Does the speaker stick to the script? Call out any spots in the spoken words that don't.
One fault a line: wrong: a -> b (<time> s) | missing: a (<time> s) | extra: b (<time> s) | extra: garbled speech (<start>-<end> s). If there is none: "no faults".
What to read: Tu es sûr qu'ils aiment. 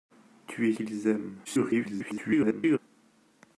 missing: sûr (0.7 s)
extra: garbled speech (1.4-2.8 s)